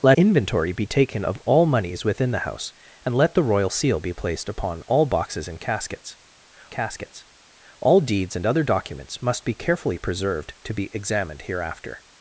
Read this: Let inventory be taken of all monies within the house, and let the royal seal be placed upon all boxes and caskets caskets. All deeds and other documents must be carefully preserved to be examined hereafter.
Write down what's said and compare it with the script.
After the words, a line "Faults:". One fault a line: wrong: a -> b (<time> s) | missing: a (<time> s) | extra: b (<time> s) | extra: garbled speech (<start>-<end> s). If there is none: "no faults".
Let inventory be taken of all monies within the house, and let the royal seal be placed upon all boxes and caskets caskets. All deeds and other documents must be carefully preserved to be examined hereafter.
Faults:
no faults